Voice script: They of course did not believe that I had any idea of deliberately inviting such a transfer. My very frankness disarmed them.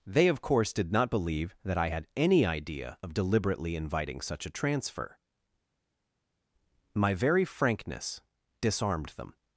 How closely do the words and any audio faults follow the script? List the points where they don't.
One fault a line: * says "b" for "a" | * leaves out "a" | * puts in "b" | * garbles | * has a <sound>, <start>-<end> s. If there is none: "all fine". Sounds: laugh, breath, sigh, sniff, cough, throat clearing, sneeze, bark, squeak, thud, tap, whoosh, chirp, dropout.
all fine